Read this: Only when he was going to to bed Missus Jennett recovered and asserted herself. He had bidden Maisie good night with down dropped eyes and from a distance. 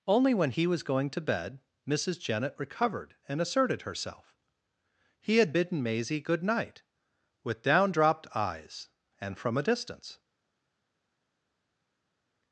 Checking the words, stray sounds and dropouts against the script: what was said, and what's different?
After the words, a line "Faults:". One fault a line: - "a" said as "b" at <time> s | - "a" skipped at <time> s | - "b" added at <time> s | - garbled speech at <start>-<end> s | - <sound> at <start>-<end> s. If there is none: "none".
Only when he was going to bed Missus Jennett recovered and asserted herself. He had bidden Maisie good night with down dropped eyes and from a distance.
Faults:
- "to" skipped at 1.2 s